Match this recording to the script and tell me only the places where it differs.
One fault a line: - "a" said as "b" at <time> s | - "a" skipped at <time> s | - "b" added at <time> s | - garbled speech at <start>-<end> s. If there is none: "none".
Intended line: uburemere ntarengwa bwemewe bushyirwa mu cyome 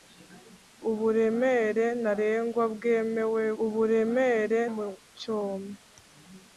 - "bushyirwa" said as "uburemere" at 3.6 s